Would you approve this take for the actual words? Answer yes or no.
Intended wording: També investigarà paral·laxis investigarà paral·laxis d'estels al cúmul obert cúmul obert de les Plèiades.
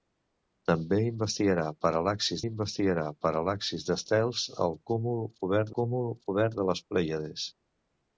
yes